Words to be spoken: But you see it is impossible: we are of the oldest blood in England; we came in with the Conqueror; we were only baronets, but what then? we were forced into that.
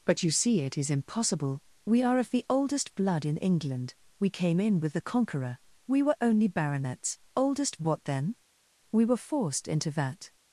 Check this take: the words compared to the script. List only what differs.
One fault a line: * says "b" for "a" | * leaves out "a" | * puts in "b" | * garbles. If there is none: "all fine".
* says "oldest" for "but"